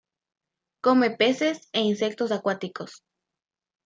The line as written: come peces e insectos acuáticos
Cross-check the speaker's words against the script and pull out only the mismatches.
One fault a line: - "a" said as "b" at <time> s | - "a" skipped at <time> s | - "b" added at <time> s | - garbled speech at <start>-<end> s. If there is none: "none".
none